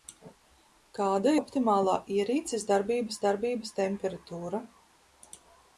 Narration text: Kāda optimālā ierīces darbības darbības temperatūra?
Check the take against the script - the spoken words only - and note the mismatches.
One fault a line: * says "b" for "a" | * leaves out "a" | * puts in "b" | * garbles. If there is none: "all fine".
all fine